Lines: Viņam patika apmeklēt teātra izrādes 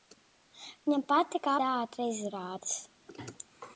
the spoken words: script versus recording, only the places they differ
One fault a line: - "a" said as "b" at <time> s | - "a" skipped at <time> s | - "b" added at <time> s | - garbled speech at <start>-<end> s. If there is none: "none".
- "apmeklēt" skipped at 1.5 s